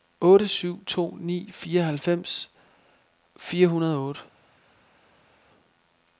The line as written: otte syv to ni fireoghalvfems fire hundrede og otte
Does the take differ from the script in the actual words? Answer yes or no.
no